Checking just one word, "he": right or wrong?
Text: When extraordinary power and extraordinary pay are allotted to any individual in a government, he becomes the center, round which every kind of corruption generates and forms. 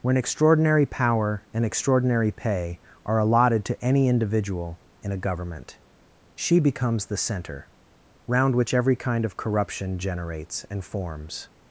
wrong